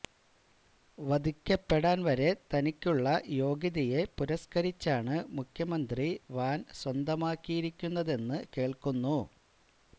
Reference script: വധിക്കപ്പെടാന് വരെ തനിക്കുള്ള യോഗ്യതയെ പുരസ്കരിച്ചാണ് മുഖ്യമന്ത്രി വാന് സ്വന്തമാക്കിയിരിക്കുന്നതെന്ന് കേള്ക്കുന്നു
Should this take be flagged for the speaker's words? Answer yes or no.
no